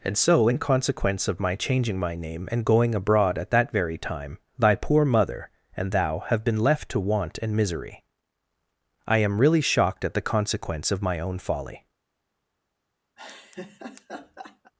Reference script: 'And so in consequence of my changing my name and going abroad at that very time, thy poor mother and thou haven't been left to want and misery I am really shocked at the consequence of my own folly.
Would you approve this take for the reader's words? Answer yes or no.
no